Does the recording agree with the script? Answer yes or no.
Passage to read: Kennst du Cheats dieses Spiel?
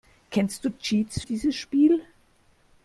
yes